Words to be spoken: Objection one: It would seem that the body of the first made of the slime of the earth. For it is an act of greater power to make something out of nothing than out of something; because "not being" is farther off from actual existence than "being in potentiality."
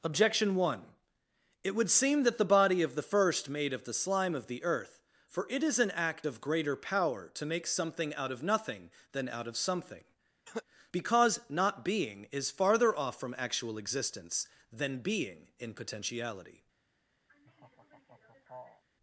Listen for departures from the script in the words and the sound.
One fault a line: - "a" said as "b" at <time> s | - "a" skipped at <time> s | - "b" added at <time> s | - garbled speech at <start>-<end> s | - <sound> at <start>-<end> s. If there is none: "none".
- cough at 10.5-10.6 s
- laugh at 17.3-18.8 s